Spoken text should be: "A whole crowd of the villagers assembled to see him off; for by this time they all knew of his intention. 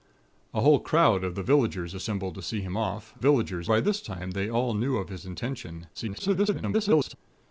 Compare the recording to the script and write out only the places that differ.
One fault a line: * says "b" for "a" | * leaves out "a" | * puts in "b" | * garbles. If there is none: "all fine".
* says "villagers" for "for"
* garbles